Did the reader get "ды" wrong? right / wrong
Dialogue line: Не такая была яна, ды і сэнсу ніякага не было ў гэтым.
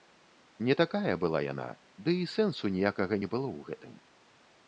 right